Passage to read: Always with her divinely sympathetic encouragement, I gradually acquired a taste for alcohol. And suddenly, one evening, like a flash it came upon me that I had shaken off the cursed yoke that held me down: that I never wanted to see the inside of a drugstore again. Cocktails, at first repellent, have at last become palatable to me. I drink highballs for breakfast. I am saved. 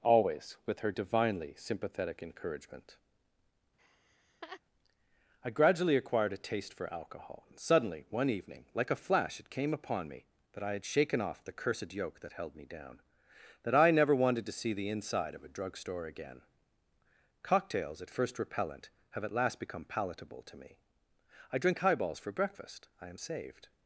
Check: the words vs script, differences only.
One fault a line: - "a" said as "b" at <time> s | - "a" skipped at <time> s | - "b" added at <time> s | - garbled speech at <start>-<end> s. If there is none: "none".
none